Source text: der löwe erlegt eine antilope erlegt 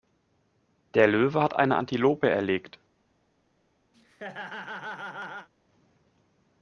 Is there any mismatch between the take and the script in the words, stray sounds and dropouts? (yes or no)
yes